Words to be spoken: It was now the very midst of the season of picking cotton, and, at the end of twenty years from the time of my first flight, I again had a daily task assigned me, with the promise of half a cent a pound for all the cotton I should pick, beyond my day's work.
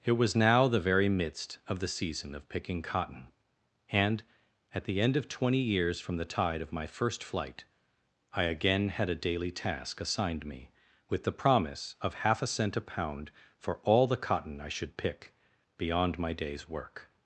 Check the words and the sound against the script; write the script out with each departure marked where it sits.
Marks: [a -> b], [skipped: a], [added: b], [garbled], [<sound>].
It was now the very midst of the season of picking cotton, and, at the end of twenty years from the [time -> tide] of my first flight, I again had a daily task assigned me, with the promise of half a cent a pound for all the cotton I should pick, beyond my day's work.